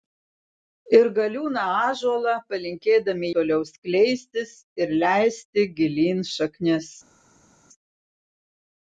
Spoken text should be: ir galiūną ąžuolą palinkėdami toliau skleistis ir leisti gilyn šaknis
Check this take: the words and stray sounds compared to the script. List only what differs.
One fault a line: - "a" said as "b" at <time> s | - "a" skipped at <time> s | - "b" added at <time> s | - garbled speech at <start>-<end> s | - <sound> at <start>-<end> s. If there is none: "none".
none